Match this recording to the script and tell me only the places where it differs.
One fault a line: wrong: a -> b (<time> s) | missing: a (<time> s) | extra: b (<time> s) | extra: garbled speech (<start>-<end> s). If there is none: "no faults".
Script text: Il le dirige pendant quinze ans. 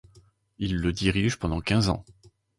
no faults